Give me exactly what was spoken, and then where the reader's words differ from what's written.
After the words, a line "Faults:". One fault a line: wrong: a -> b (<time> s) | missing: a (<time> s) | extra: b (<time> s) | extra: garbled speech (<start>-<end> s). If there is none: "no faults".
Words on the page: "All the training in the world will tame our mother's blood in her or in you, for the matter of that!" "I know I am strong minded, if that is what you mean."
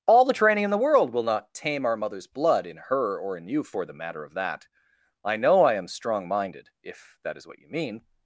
"All the training in the world will not tame our mother's blood in her or in you, for the matter of that!" "I know I am strong minded, if that is what you mean."
Faults:
extra: not (1.2 s)